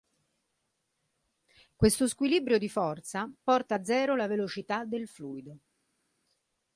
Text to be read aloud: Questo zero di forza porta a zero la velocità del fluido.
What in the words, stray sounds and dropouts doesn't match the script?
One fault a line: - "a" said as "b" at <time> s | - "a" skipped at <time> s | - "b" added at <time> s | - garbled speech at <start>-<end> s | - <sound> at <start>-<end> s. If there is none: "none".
- "zero" said as "squilibrio" at 2.1 s